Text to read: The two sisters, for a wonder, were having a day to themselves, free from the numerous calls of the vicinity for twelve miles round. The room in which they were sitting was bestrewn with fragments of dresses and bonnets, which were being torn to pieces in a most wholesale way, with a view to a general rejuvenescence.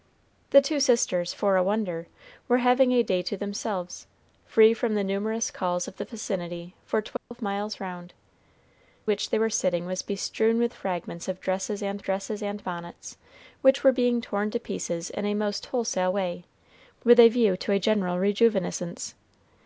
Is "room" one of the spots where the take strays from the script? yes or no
yes